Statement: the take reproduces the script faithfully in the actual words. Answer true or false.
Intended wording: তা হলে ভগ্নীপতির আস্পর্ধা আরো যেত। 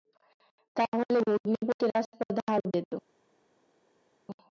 true